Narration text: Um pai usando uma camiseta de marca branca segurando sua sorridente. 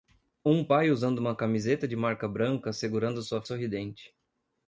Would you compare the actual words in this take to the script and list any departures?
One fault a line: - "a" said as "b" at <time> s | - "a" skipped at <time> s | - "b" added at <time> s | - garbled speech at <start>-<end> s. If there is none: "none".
none